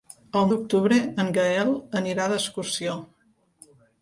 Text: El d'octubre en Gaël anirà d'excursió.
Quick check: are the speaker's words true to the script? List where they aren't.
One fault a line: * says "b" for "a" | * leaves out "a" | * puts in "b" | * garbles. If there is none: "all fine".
all fine